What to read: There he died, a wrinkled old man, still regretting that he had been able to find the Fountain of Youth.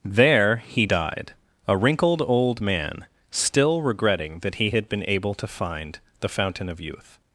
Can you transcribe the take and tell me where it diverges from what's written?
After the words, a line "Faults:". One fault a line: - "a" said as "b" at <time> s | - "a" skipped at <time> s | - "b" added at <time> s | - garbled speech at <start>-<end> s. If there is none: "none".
There he died, a wrinkled old man, still regretting that he had been able to find the Fountain of Youth.
Faults:
none